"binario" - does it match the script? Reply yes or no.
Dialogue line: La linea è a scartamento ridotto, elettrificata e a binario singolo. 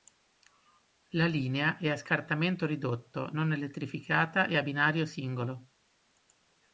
yes